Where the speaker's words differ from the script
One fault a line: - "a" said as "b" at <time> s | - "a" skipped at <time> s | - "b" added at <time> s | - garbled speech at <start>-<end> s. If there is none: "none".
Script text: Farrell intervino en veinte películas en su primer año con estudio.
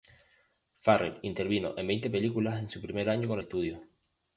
none